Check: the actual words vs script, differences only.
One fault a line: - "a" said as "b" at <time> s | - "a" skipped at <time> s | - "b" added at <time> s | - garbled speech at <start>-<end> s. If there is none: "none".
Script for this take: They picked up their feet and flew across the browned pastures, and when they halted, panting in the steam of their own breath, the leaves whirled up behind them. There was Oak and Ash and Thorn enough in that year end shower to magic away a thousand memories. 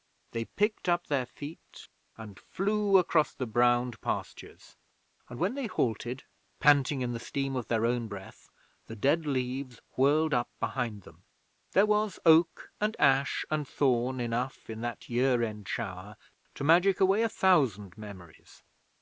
- "dead" added at 8.9 s